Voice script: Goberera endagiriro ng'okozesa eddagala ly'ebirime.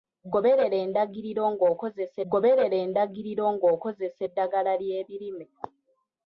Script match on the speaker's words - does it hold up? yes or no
no